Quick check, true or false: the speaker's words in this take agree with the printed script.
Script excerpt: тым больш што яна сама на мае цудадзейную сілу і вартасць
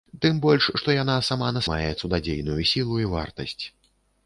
true